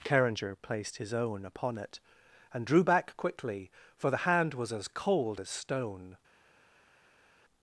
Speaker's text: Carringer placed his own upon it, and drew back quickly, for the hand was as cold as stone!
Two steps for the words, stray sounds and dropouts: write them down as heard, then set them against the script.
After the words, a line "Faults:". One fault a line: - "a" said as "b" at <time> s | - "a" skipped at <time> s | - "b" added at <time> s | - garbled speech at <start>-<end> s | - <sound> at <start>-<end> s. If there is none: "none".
Carringer placed his own upon it, and drew back quickly, for the hand was as cold as stone!
Faults:
none